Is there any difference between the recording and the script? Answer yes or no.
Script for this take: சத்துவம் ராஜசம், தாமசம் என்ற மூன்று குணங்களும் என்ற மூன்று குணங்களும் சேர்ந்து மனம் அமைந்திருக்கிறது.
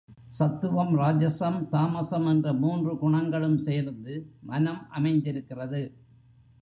yes